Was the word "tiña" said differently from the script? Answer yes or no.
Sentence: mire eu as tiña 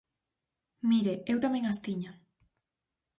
no